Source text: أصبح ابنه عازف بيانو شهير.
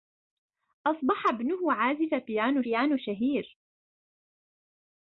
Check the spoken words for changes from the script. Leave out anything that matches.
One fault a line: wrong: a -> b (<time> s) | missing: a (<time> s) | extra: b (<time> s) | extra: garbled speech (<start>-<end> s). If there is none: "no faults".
extra: بيانو (2.6 s)